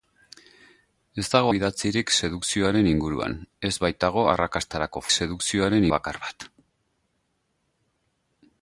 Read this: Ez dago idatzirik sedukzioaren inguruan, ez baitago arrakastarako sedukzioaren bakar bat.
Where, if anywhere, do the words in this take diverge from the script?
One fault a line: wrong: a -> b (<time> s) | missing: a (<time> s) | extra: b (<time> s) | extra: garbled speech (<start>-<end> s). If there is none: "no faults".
no faults